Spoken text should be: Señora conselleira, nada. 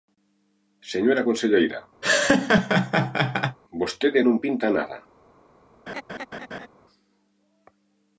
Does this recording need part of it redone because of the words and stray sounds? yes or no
yes